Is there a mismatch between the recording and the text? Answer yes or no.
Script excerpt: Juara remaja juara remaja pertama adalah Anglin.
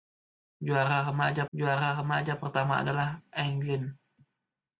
no